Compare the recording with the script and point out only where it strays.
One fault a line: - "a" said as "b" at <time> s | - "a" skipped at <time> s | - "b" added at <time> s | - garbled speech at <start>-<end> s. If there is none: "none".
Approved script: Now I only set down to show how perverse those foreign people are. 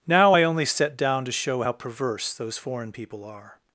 none